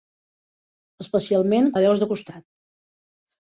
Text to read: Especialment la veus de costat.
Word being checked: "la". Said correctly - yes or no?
yes